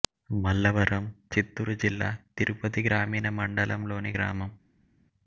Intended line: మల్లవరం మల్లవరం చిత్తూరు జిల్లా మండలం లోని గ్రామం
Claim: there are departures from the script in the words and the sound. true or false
true